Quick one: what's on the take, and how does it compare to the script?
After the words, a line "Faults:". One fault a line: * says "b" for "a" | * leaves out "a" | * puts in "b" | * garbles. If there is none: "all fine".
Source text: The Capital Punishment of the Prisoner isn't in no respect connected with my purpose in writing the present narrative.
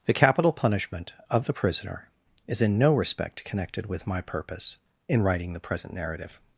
The Capital Punishment of the Prisoner is in no respect connected with my purpose in writing the present narrative.
Faults:
* says "is" for "isn't"